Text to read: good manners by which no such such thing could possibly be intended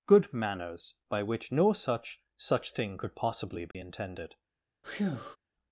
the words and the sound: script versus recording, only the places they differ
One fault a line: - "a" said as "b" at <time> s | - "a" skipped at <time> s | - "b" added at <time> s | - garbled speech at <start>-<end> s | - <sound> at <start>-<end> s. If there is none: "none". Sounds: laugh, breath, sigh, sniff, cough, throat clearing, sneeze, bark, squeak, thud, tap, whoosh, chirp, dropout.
- dropout at 3.7-3.7 s
- breath at 4.8-5.4 s